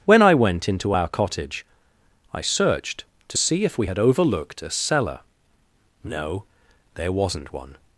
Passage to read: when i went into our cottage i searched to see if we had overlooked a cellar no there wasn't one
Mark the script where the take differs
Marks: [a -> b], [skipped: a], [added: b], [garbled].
when i went into our cottage i searched to see if we had overlooked a cellar no there wasn't one